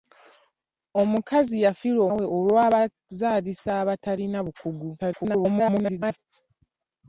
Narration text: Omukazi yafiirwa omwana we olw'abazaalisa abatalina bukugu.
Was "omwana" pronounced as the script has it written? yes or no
no